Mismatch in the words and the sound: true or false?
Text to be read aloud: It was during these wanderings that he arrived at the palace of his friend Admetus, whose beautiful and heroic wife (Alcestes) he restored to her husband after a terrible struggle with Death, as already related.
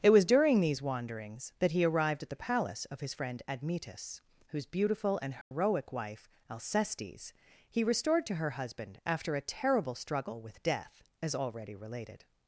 true